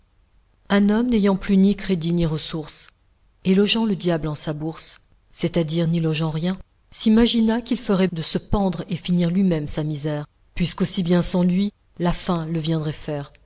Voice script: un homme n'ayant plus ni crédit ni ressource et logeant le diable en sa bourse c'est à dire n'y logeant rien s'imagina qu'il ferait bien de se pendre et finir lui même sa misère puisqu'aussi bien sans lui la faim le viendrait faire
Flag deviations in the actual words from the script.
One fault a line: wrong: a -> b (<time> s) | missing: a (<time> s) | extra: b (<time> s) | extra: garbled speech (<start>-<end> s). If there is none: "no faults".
missing: bien (8.1 s)